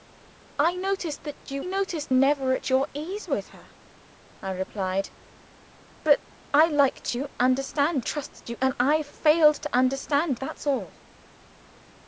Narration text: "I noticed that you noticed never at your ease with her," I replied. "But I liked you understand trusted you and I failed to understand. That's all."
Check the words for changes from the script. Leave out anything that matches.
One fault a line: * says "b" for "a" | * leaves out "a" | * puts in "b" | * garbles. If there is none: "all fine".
all fine